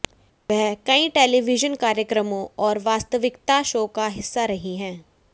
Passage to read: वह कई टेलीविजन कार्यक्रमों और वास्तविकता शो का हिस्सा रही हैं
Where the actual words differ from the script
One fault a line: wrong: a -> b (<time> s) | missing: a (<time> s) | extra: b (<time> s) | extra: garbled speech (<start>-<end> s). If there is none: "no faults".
no faults